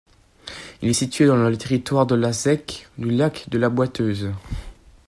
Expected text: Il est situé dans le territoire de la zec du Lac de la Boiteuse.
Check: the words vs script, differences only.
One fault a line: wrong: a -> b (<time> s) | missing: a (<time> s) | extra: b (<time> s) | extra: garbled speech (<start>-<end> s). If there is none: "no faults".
no faults